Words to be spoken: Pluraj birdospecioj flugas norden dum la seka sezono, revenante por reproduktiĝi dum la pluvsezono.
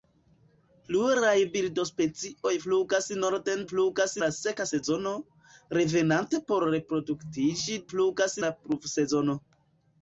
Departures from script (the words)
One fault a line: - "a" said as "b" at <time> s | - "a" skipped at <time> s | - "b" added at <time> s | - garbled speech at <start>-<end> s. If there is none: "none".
- "dum" said as "flugas" at 3.7 s
- "dum" said as "flugas" at 7.9 s